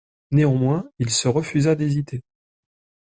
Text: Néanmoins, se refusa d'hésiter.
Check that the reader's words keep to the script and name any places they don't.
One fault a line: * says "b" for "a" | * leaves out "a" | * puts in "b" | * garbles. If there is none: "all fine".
* puts in "il"